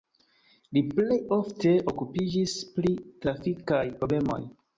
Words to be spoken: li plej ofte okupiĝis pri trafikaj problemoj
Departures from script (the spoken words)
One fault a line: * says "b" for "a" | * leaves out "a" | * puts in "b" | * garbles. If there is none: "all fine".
all fine